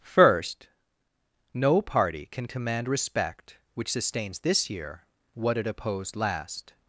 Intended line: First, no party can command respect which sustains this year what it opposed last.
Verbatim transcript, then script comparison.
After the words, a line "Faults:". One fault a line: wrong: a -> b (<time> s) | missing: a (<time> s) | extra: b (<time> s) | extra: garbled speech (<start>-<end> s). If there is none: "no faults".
First, no party can command respect which sustains this year what it opposed last.
Faults:
no faults